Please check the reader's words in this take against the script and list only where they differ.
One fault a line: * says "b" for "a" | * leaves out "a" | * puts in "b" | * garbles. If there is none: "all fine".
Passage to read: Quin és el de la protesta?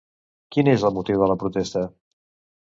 * puts in "motiu"